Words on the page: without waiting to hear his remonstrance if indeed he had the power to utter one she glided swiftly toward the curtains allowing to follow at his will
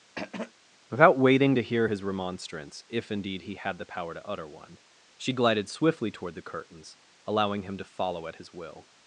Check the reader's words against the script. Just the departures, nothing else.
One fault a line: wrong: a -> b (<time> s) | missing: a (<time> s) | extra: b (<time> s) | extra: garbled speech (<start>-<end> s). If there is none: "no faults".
extra: him (7.6 s)